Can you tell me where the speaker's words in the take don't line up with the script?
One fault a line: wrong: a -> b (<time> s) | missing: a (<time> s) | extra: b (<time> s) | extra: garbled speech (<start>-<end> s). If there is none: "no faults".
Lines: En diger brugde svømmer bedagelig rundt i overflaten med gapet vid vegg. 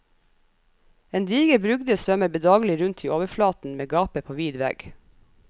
extra: på (4.2 s)